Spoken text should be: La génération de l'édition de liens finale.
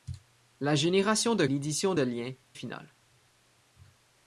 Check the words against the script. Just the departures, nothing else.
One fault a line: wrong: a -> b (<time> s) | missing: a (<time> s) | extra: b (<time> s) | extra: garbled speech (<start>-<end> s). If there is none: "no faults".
no faults